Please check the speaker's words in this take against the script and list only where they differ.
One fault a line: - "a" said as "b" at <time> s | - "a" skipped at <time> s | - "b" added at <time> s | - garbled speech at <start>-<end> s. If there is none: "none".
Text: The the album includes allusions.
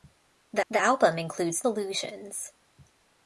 none